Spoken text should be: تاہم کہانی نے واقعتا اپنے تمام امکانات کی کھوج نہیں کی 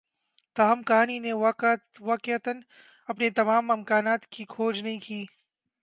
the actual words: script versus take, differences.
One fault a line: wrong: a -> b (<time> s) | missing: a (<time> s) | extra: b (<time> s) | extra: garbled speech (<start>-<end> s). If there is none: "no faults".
no faults